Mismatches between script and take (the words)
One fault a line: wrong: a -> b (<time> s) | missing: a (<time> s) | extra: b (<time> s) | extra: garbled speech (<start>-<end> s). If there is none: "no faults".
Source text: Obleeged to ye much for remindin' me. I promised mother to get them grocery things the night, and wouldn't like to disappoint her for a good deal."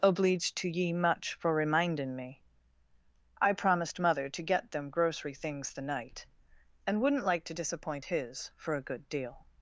wrong: her -> his (8.0 s)